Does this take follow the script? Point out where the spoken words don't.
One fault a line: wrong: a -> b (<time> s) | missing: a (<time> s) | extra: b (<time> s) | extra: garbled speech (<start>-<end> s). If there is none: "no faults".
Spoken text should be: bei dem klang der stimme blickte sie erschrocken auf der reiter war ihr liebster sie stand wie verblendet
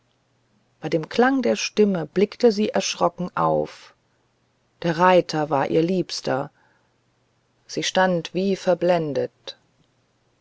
no faults